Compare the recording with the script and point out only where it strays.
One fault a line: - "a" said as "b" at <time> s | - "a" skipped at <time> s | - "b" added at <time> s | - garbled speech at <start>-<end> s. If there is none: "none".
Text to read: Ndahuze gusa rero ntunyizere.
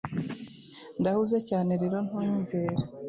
- "gusa" said as "cyane" at 1.5 s